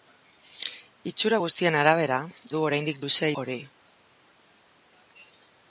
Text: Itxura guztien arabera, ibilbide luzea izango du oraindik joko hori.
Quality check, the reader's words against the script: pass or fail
fail